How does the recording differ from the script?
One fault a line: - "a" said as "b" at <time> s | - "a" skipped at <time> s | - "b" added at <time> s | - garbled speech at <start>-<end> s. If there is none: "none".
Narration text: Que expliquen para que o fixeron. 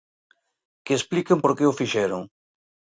- "para" said as "por" at 1.4 s